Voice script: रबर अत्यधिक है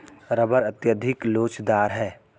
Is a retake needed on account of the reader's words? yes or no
yes